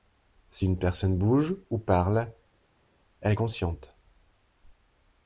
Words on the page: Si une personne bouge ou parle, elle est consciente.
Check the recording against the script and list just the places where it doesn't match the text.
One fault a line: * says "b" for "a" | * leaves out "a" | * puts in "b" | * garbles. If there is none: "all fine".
all fine